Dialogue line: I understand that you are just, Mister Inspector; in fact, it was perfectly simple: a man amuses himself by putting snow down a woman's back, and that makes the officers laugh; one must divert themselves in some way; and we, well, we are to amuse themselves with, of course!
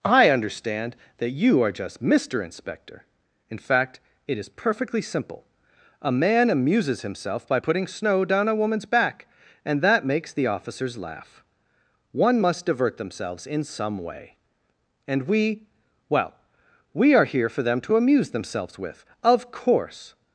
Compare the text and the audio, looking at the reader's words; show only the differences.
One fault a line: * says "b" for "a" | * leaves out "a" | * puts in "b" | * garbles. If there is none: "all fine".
* says "is" for "was"
* puts in "here for them"